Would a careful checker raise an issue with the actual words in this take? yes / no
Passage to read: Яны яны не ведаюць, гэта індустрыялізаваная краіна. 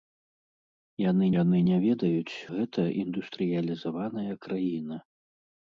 no